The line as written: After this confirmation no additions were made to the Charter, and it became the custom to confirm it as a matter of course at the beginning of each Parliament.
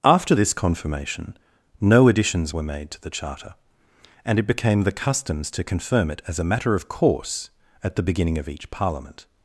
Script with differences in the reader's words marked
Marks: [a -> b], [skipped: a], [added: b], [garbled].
After this confirmation no additions were made to the Charter, and it became the [custom -> customs] to confirm it as a matter of course at the beginning of each Parliament.